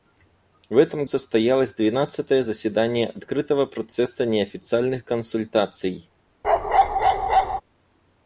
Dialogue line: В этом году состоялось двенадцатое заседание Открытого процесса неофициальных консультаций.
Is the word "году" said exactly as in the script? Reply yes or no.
no